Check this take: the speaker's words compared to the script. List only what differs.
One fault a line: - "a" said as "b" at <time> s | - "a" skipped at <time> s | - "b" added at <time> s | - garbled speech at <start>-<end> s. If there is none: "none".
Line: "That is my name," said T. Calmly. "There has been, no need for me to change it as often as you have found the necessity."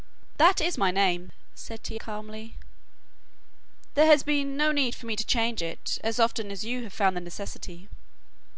none